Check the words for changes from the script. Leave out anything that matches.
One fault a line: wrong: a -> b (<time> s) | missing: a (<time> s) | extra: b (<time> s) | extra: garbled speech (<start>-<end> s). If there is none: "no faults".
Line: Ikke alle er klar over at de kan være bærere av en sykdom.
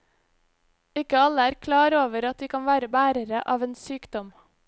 no faults